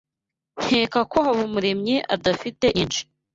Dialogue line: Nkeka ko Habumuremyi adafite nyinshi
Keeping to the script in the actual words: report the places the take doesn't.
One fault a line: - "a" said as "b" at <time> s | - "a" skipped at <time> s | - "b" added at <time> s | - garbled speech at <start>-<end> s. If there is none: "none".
none